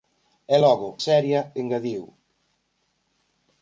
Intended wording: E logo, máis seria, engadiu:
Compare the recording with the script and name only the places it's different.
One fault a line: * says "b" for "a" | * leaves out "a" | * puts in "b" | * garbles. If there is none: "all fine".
* leaves out "máis"